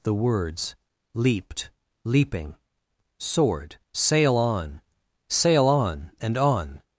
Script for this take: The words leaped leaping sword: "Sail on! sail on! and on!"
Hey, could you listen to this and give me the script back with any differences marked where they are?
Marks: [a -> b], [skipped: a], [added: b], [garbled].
The words leaped leaping sword: "Sail on! sail on! and on!"